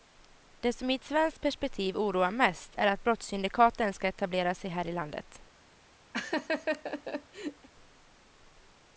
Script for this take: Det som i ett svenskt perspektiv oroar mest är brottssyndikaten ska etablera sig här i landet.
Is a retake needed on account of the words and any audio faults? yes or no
yes